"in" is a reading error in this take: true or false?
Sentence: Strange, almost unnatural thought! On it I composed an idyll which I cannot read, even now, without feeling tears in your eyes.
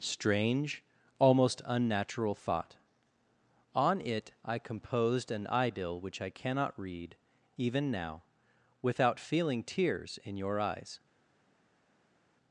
false